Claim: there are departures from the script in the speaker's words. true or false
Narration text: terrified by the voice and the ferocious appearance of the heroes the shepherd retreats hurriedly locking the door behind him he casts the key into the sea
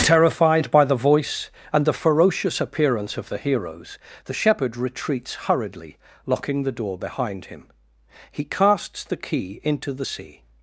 false